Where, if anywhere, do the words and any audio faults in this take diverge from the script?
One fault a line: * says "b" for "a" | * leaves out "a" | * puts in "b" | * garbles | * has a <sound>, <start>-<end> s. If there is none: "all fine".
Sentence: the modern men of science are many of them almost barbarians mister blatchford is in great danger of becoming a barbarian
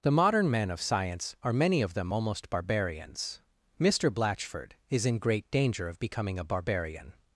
all fine